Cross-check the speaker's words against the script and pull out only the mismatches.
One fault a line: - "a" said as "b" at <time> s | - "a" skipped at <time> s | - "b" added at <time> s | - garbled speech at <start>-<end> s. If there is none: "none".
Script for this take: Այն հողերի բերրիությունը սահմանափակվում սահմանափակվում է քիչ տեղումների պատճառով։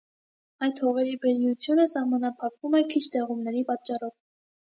- "Այն" said as "Այդ" at 0.7 s
- "սահմանափակվում" skipped at 2.8 s